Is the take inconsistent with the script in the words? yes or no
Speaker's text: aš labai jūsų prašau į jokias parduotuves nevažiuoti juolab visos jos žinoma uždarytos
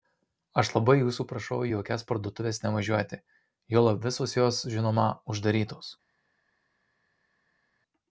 no